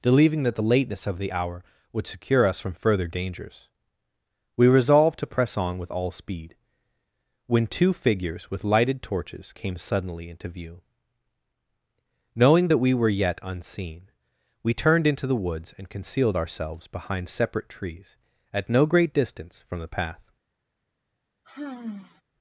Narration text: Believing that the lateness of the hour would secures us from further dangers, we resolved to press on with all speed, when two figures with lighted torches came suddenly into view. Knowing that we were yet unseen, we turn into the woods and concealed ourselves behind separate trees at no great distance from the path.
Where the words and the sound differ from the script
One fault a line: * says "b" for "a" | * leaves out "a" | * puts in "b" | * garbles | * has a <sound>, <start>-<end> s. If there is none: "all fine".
* says "secure" for "secures"
* says "turned" for "turn"
* has a sigh, 21.4-22.2 s